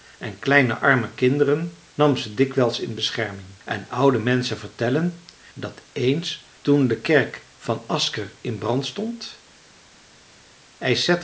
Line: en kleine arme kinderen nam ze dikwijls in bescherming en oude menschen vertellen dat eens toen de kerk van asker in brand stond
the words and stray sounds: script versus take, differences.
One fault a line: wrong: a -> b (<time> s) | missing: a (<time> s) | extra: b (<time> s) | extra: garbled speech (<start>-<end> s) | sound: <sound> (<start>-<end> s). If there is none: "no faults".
no faults